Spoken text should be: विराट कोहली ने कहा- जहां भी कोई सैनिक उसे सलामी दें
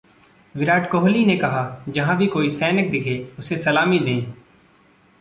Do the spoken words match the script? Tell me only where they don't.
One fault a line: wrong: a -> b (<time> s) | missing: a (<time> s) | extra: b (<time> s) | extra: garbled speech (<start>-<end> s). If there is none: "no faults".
extra: दिखे (2.9 s)